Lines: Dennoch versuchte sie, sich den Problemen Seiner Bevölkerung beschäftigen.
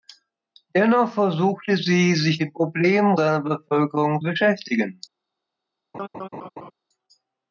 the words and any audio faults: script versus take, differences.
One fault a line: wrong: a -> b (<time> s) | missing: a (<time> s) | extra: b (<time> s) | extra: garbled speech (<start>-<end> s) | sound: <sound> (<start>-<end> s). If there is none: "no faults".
sound: laugh (5.9-6.7 s)